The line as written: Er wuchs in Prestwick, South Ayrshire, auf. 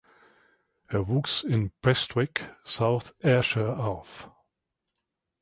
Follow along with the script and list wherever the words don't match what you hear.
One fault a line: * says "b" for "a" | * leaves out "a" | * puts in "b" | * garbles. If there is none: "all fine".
all fine